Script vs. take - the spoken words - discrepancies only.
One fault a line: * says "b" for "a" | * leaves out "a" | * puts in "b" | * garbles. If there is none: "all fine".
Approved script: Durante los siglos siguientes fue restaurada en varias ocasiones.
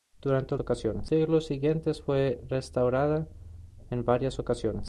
* says "ocasiones" for "los"